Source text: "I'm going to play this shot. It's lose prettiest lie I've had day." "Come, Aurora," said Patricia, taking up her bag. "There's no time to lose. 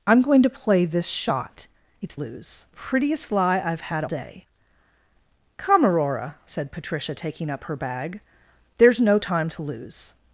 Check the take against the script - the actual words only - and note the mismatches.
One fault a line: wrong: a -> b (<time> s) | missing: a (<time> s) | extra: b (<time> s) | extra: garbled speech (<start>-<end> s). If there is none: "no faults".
no faults